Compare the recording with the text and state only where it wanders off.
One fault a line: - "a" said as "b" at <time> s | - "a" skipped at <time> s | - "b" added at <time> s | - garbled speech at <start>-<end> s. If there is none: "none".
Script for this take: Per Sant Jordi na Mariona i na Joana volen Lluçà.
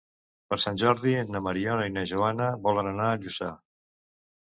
- "anar a" added at 3.0 s